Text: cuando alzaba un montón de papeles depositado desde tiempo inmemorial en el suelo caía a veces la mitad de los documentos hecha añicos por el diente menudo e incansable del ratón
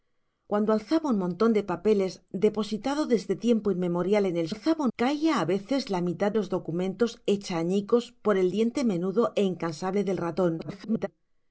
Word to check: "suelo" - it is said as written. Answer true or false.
false